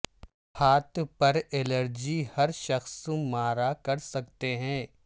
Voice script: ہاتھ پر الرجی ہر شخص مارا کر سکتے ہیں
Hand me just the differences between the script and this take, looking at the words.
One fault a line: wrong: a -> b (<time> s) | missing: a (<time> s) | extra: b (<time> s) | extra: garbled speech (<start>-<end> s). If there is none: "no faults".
no faults